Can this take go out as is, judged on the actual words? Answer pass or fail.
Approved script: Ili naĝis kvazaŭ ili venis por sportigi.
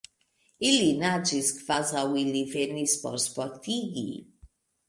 pass